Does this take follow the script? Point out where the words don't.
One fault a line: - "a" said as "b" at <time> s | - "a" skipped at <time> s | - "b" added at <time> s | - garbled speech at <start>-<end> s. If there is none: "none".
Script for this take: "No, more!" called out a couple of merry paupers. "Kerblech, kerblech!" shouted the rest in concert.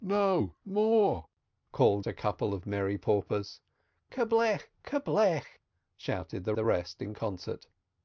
- "out" skipped at 2.1 s
- "the" added at 6.5 s